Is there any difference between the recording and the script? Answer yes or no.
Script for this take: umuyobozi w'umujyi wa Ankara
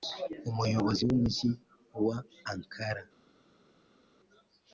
no